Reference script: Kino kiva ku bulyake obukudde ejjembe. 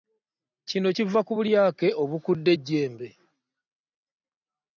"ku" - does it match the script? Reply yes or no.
yes